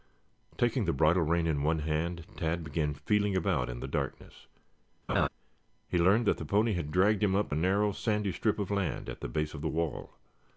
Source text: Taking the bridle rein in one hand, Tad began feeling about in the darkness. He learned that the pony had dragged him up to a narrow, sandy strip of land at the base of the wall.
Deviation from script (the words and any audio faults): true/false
true